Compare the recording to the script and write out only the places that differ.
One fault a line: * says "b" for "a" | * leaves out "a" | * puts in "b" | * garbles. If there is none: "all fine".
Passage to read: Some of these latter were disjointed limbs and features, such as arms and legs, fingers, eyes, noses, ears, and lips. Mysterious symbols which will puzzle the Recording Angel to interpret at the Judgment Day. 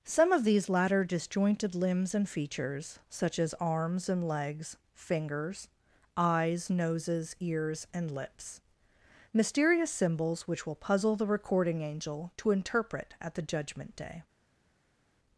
* leaves out "were"